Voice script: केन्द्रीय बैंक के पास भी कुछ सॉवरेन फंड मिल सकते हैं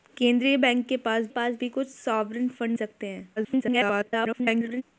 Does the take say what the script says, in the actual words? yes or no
no